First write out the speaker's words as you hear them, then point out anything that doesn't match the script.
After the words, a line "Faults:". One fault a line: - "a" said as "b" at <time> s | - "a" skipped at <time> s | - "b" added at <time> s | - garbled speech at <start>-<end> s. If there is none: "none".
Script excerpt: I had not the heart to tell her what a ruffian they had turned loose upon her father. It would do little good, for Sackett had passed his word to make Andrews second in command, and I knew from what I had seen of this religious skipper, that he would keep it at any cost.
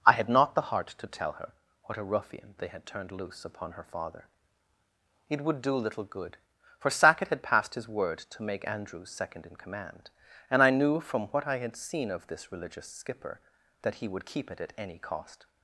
I had not the heart to tell her what a ruffian they had turned loose upon her father. It would do little good, for Sackett had passed his word to make Andrews second in command, and I knew from what I had seen of this religious skipper, that he would keep it at any cost.
Faults:
none